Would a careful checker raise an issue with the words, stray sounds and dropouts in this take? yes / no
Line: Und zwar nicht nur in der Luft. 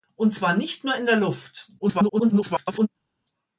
yes